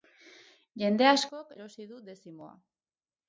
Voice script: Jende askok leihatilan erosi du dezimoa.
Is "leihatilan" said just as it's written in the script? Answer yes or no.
no